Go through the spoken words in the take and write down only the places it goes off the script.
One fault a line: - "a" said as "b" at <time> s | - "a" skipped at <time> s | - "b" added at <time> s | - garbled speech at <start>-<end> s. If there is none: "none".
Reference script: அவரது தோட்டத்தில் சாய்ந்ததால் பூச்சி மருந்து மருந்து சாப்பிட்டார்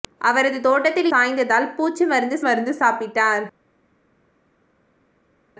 none